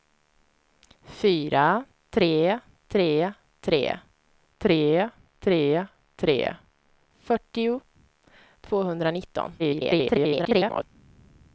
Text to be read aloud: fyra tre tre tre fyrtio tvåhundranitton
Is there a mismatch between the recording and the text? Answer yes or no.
yes